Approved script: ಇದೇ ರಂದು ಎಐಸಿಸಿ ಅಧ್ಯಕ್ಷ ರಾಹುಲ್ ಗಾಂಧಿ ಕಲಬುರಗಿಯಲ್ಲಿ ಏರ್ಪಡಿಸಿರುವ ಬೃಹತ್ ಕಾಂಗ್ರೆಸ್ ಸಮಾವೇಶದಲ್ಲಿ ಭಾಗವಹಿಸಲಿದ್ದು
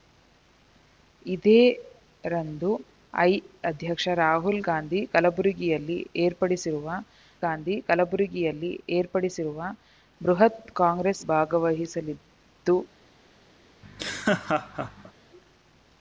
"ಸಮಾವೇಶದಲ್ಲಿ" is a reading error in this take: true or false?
true